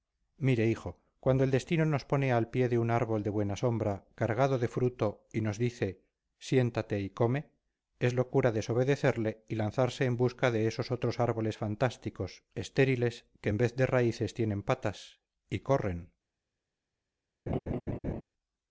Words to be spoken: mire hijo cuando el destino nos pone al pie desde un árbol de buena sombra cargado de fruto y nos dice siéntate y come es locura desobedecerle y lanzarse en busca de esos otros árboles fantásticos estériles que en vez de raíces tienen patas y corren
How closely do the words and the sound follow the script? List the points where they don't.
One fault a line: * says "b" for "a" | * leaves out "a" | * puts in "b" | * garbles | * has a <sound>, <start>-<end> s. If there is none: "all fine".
* says "de" for "desde"
* has a laugh, 17.5-18.2 s